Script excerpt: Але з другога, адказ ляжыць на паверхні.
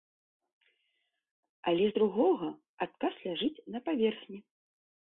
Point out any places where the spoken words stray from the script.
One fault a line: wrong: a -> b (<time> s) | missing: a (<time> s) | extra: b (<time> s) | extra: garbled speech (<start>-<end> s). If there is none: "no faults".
no faults